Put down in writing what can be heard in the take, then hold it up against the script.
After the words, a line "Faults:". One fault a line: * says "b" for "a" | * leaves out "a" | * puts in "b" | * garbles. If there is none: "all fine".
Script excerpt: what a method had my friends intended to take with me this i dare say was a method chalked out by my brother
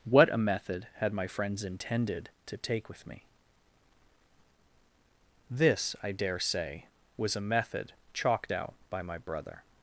what a method had my friends intended to take with me this i dare say was a method chalked out by my brother
Faults:
all fine